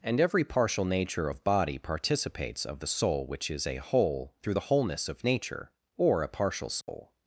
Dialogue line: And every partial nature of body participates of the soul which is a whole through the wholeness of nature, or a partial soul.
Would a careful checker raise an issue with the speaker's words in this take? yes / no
no